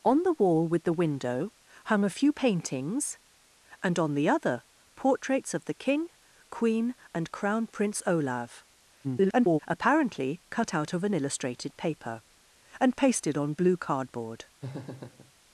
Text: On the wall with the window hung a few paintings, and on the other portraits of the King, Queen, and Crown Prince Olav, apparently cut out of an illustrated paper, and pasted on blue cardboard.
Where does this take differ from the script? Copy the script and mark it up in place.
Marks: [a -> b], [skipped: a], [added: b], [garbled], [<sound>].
On the wall with the window hung a few paintings, and on the other portraits of the King, Queen, and Crown Prince Olav, [garbled] apparently cut out of an illustrated paper, and pasted on blue cardboard. [laugh]